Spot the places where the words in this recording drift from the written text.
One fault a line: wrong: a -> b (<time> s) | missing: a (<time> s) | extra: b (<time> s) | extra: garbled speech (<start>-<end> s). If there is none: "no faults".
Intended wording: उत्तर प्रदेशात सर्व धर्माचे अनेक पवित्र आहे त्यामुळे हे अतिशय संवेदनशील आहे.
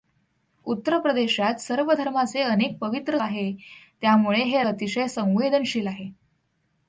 no faults